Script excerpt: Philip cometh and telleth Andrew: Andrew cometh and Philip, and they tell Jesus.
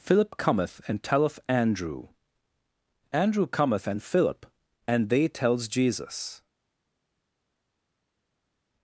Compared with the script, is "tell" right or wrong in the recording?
wrong